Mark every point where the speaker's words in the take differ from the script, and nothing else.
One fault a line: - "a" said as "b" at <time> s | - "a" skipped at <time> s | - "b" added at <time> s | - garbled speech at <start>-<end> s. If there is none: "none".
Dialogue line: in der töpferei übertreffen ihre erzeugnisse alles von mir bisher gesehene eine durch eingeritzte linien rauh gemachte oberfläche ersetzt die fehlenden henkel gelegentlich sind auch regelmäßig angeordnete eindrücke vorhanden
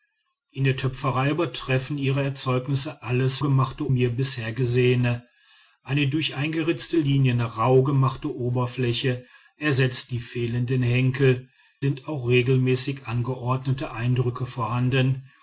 - "von" said as "gemachte" at 3.4 s
- "gelegentlich" skipped at 11.5 s